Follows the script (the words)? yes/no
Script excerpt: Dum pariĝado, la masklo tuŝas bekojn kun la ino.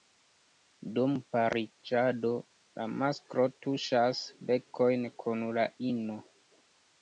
yes